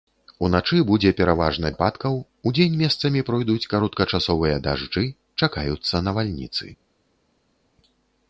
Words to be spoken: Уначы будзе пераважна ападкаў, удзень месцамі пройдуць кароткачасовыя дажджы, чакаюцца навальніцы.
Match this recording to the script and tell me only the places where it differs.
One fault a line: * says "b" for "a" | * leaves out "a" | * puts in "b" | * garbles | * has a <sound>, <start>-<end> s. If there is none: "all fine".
all fine